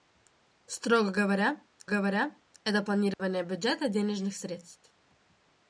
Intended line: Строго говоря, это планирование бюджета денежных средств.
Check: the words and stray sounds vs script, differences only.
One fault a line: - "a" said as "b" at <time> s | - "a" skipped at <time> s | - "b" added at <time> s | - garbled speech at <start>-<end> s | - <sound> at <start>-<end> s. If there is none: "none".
- "говоря" added at 1.9 s
- dropout at 3.1-3.2 s